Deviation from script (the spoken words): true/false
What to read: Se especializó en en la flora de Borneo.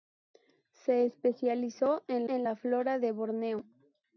false